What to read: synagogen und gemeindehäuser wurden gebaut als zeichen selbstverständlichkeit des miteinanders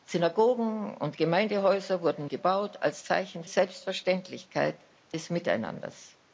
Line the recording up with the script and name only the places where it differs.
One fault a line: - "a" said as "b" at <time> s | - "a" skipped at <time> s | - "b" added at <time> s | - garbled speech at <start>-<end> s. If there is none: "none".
none